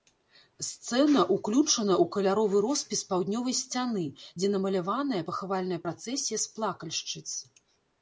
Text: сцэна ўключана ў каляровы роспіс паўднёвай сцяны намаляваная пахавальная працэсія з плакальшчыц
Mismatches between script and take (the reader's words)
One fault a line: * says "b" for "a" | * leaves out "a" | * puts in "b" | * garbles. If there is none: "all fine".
* puts in "дзе"